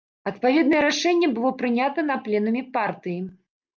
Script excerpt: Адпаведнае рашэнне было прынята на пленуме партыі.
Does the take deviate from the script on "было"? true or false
false